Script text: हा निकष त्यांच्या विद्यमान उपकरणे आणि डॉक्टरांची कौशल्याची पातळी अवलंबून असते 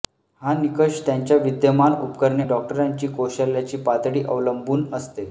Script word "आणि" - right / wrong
wrong